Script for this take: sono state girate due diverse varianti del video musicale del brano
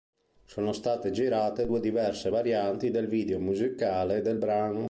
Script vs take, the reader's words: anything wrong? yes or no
no